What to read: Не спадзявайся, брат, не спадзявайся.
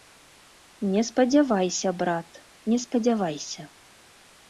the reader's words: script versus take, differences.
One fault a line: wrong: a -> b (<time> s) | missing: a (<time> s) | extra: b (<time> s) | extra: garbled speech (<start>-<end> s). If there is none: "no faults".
no faults